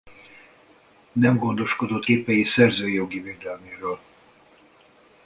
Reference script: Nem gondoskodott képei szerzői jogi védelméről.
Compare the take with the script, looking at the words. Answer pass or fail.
pass